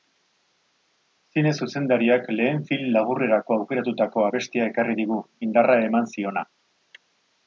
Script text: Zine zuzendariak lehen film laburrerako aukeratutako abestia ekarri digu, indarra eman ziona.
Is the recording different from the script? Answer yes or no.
no